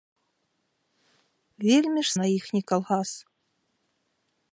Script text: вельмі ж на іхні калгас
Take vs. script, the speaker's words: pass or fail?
pass